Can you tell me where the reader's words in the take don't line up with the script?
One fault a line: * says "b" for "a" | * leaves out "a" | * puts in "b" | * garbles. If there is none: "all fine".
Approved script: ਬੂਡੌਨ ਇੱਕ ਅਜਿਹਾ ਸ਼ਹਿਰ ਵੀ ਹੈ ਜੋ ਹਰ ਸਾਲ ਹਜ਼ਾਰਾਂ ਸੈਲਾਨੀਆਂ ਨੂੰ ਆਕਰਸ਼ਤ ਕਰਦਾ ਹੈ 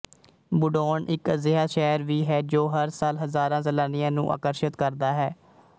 all fine